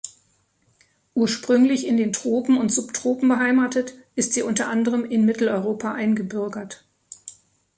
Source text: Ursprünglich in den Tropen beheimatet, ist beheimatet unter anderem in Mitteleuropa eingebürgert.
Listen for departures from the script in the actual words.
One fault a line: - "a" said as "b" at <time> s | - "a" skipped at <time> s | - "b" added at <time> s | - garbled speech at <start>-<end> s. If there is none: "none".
- "und Subtropen" added at 2.6 s
- "beheimatet" said as "sie" at 4.3 s